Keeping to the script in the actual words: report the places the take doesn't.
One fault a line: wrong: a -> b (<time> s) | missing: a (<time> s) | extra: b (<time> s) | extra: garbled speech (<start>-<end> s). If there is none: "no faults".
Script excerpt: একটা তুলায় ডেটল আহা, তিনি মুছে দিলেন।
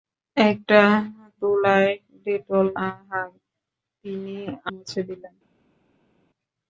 no faults